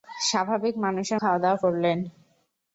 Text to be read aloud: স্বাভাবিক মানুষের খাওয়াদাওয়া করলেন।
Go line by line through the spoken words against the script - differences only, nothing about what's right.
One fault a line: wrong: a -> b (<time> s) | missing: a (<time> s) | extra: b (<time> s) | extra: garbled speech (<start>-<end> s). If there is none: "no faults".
no faults